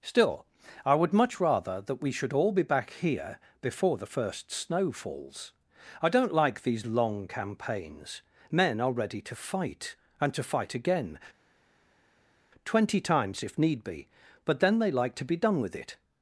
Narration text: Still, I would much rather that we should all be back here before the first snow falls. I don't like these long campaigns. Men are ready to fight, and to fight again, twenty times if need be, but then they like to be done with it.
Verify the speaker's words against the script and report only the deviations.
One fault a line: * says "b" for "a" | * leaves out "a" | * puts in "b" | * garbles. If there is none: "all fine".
all fine